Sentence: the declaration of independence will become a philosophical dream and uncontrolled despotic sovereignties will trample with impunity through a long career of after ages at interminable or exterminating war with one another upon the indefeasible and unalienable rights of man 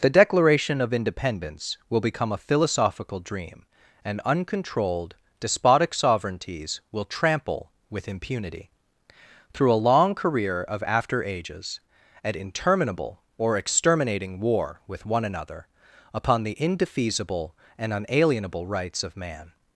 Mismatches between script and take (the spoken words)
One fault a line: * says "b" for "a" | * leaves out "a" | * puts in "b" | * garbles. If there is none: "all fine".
all fine